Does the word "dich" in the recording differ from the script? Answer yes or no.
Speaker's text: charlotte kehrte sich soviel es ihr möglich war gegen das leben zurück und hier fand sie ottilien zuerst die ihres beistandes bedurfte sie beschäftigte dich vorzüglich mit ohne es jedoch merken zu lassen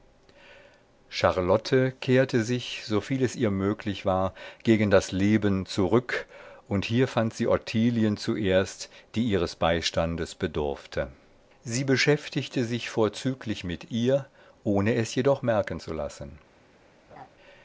yes